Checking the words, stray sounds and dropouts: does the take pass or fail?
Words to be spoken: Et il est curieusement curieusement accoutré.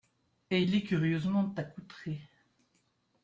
fail